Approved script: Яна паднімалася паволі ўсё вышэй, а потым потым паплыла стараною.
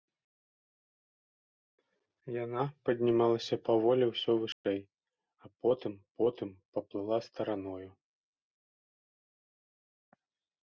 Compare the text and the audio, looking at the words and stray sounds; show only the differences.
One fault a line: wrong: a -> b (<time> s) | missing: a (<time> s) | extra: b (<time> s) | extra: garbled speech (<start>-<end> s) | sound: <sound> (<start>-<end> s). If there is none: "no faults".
sound: dropout (4.5-4.6 s)